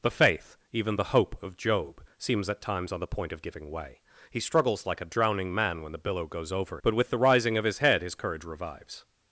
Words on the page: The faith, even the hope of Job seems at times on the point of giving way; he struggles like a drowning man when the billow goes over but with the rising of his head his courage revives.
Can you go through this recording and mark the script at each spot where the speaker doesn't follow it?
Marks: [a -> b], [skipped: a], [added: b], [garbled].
The faith, even the hope of Job seems at times on the point of giving way; he struggles like a drowning man when the billow goes over but with the rising of his head his courage revives.